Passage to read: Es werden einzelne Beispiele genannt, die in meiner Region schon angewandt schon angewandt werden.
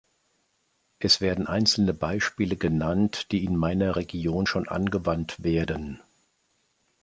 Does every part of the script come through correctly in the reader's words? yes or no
no